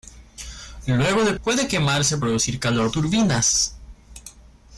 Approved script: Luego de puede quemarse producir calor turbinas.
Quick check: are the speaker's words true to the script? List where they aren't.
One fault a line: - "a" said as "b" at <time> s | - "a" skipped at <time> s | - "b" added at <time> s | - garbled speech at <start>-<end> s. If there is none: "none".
none